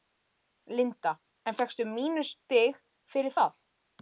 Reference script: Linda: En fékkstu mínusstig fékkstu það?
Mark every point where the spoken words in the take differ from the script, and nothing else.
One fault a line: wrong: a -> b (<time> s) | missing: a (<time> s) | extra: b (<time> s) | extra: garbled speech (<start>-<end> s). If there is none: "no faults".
wrong: fékkstu -> fyrir (3.1 s)